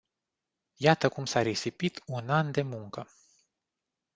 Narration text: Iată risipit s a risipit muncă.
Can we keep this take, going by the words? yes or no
no